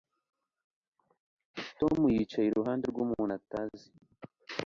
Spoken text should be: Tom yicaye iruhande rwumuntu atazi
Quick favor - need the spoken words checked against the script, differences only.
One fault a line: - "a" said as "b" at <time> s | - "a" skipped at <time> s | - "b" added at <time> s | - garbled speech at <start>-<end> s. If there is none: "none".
none